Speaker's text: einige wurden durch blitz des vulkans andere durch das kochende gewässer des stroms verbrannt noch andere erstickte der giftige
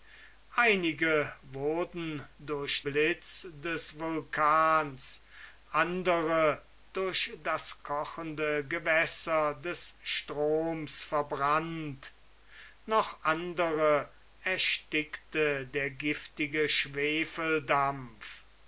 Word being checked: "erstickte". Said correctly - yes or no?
yes